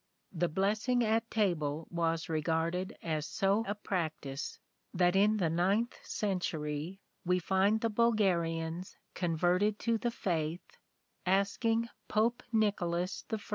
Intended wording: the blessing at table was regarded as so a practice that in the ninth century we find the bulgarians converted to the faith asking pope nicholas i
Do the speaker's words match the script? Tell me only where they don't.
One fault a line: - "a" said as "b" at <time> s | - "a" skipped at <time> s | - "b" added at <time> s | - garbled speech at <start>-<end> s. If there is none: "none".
none